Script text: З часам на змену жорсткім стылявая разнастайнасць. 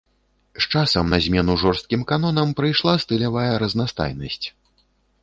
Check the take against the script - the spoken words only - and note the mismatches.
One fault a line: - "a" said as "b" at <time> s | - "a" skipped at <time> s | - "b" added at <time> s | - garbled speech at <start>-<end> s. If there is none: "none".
- "канонам прыйшла" added at 2.1 s